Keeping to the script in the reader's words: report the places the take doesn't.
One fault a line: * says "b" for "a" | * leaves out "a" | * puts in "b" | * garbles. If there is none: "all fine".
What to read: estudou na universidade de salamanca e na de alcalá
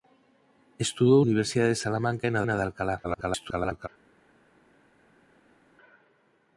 * leaves out "na"
* puts in "na"
* garbles